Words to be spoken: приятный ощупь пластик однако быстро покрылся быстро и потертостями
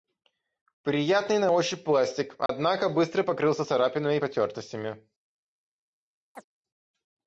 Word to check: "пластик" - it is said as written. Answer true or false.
true